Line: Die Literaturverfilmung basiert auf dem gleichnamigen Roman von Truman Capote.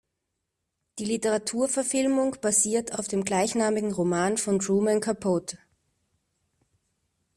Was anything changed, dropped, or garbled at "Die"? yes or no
no